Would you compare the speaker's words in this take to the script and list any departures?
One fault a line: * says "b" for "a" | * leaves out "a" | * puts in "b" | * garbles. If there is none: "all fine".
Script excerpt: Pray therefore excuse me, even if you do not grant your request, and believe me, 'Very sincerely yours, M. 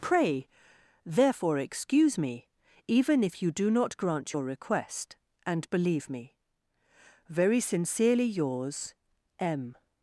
all fine